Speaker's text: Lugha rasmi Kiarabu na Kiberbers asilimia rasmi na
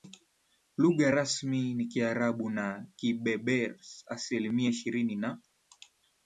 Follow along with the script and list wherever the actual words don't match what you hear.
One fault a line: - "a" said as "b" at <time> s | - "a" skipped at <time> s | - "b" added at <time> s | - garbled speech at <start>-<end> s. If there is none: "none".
- "ni" added at 1.7 s
- "rasmi" said as "ishirini" at 4.7 s